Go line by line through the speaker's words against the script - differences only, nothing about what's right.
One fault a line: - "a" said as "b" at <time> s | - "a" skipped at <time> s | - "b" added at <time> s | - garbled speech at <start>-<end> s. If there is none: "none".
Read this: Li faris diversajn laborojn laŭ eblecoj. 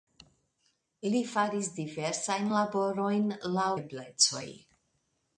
none